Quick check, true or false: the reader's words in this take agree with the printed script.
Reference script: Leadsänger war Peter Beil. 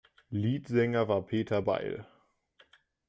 true